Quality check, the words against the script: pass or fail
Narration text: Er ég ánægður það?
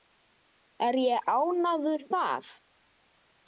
pass